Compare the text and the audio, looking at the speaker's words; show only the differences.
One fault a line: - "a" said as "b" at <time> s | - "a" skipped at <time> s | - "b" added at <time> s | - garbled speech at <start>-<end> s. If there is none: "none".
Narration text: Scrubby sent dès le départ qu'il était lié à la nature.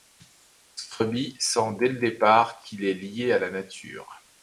- "était" said as "est" at 2.9 s